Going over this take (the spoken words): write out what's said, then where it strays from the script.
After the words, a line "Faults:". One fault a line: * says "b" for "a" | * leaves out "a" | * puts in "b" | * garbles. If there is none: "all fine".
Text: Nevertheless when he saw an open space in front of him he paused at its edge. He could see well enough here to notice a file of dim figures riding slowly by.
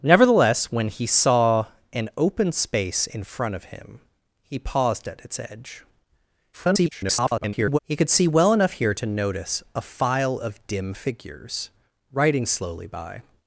Nevertheless when he saw an open space in front of him he paused at its edge. [garbled] He could see well enough here to notice a file of dim figures riding slowly by.
Faults:
* garbles